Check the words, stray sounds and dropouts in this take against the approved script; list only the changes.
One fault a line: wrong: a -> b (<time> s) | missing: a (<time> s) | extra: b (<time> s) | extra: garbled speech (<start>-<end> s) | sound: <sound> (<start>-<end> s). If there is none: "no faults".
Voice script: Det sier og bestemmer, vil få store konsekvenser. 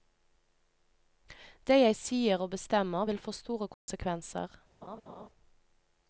extra: jeg (1.8 s)
sound: dropout (3.7-3.9 s)
sound: laugh (4.8-5.3 s)